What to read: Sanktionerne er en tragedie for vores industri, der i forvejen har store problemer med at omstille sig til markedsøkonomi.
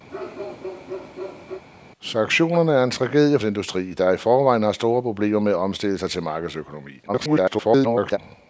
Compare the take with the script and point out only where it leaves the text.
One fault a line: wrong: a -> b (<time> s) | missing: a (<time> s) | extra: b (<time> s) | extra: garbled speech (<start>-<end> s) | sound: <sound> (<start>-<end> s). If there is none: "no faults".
sound: bark (0.1-1.6 s)
missing: for vores (3.4 s)
extra: garbled speech (7.1-8.2 s)